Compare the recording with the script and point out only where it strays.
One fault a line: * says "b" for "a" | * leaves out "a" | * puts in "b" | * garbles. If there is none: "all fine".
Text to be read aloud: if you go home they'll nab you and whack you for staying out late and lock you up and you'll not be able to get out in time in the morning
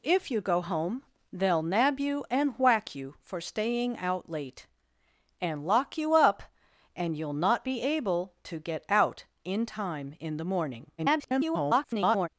* garbles